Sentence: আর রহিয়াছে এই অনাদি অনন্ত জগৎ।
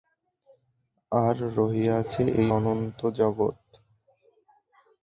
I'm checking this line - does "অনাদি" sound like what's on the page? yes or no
no